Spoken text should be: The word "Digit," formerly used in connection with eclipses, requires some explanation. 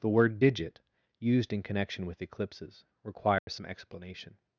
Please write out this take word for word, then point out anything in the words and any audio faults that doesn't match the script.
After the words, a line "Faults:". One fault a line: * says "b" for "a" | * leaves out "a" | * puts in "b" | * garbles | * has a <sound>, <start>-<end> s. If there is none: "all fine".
The word "Digit," used in connection with eclipses, requires some explanation.
Faults:
* leaves out "formerly"
* has a dropout, 3.4-3.5 s